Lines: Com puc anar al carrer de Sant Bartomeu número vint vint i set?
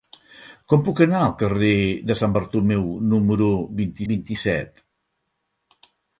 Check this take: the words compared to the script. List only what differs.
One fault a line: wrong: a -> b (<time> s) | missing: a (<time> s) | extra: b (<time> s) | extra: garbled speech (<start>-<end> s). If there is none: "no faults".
no faults